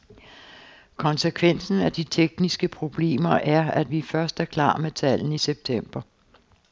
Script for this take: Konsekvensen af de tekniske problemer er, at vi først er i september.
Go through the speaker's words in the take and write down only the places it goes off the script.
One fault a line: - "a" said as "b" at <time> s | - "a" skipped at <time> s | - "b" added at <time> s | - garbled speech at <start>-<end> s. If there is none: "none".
- "klar med tallene" added at 4.4 s